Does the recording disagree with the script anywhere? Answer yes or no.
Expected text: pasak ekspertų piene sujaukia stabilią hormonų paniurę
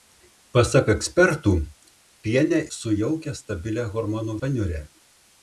no